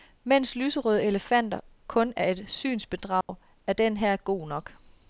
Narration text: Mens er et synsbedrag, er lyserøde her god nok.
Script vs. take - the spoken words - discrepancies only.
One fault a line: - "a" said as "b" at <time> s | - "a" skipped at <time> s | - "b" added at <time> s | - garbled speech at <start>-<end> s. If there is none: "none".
- "lyserøde elefanter kun" added at 0.6 s
- "lyserøde" said as "den" at 3.7 s